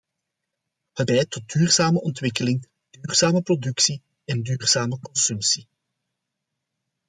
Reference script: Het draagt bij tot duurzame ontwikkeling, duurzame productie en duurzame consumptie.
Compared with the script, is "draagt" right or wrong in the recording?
wrong